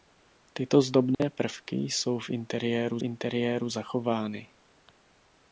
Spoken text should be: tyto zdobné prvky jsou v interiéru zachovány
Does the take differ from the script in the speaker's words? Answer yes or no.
yes